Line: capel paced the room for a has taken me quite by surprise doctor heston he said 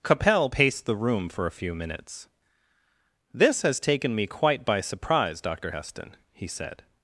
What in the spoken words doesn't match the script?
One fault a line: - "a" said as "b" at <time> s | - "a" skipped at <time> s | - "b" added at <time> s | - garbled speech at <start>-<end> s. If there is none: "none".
- "few minutes this" added at 1.5 s